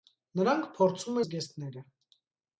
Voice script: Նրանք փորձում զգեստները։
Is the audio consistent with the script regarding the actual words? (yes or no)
yes